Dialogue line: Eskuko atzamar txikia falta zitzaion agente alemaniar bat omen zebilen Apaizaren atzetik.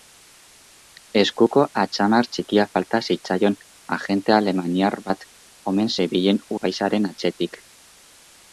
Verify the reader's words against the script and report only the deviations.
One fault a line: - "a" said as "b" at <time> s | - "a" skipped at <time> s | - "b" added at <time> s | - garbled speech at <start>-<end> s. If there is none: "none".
none